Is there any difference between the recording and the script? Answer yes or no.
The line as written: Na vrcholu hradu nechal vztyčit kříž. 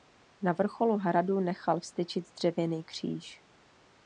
yes